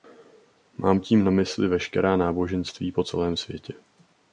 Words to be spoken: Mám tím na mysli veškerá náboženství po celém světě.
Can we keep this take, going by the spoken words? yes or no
yes